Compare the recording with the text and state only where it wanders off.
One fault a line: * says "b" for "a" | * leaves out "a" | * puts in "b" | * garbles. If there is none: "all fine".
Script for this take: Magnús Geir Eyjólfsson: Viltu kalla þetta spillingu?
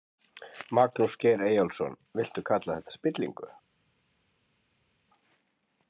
all fine